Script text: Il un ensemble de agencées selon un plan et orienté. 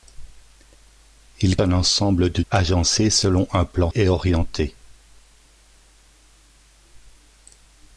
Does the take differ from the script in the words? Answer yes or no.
no